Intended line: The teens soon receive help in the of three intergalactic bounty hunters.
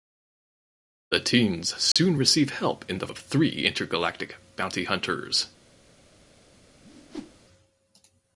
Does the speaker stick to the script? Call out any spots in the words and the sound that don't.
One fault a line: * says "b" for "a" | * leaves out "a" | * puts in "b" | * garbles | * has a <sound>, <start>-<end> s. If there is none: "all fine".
* has a dropout, 1.9-2.0 s
* has a whoosh, 6.8-7.4 s